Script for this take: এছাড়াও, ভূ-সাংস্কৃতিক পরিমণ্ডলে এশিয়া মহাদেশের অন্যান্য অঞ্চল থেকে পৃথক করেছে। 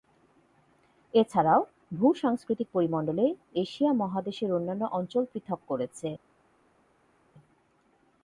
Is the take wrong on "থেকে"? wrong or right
wrong